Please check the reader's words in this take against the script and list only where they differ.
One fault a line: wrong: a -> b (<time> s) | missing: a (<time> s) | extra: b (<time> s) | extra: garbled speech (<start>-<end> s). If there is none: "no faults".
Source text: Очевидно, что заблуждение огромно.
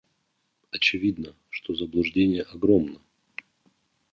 no faults